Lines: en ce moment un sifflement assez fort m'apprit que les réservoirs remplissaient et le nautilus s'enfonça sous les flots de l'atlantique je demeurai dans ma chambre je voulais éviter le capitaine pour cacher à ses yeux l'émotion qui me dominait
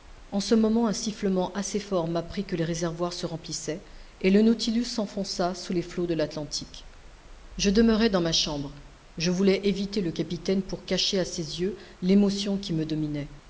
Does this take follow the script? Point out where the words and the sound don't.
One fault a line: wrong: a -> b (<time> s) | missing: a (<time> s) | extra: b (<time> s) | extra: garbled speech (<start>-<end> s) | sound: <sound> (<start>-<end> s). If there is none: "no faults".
extra: se (3.1 s)